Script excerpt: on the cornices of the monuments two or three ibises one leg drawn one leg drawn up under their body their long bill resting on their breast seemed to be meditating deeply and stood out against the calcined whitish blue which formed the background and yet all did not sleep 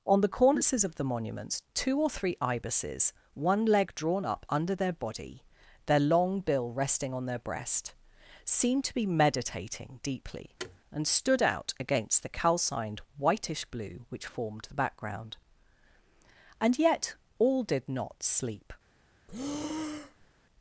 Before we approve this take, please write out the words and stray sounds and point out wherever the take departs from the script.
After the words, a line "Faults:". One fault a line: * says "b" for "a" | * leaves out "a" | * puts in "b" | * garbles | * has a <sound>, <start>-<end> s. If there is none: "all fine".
on the cornices of the monuments two or three ibises one leg drawn up under their body their long bill resting on their breast seemed to be meditating deeply and stood out against the calcined whitish blue which formed the background and yet all did not sleep
Faults:
* leaves out "one leg drawn"
* has a thud, 10.6-10.8 s
* has a breath, 19.3-20.3 s